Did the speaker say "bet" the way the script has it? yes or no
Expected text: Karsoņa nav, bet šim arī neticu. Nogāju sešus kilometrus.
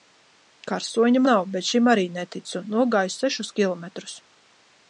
yes